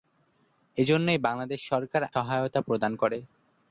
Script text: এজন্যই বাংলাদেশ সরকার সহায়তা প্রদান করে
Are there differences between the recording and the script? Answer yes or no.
no